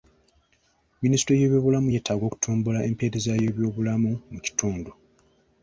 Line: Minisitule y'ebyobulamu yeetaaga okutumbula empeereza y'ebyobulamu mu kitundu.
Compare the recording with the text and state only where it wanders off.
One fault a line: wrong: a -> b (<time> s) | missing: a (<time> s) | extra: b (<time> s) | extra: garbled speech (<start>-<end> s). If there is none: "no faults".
no faults